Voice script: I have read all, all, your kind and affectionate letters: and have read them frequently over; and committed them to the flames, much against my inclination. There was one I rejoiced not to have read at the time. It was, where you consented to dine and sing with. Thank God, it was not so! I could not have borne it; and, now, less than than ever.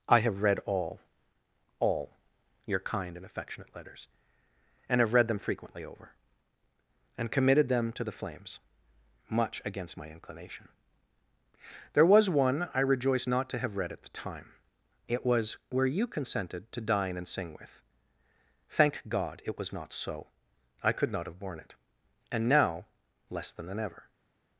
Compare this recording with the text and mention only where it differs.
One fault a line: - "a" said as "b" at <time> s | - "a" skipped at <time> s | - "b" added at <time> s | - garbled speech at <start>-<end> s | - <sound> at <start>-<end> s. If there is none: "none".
none